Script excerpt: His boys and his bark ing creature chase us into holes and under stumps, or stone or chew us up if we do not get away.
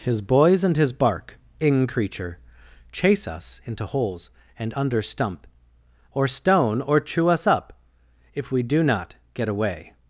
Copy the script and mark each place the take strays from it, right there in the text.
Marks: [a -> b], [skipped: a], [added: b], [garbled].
His boys and his bark ing creature chase us into holes and under [stumps, -> stump] or stone or chew us up if we do not get away.